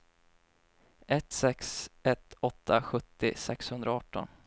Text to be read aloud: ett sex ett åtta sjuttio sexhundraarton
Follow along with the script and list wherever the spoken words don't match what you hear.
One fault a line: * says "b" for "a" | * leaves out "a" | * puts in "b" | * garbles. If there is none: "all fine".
all fine